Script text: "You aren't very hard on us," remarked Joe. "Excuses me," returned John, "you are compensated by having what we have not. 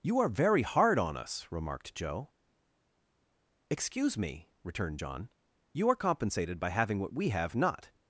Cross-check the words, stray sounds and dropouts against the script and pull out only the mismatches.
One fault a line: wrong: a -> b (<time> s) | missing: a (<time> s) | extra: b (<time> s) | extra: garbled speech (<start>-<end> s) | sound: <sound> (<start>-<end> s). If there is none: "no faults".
wrong: aren't -> are (0.2 s)
wrong: Excuses -> Excuse (3.7 s)